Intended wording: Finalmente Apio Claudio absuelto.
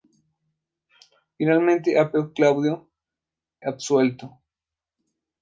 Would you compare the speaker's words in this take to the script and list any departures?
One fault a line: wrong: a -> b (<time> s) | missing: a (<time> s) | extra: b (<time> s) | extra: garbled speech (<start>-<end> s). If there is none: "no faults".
no faults